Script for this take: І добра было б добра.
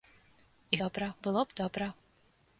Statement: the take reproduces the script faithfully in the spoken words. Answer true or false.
true